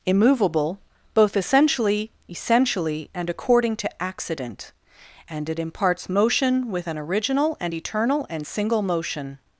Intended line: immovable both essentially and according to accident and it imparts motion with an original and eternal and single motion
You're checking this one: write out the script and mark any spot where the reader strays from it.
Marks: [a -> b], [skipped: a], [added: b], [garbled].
immovable both essentially [added: essentially] and according to accident and it imparts motion with an original and eternal and single motion